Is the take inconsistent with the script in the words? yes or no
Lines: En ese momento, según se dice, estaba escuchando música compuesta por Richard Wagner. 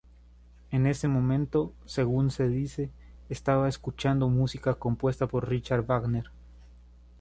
no